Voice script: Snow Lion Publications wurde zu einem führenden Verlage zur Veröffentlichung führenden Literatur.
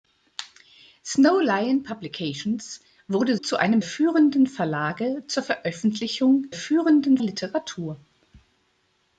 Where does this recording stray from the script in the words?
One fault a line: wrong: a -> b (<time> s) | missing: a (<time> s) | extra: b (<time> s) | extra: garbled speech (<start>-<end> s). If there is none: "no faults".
no faults